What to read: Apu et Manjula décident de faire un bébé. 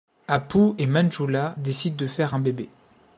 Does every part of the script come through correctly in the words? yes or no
yes